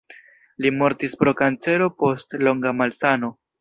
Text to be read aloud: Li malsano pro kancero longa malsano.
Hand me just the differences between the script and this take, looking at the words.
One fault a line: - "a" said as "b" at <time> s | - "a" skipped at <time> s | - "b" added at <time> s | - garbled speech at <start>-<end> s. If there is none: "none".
- "malsano" said as "mortis" at 0.8 s
- "post" added at 2.0 s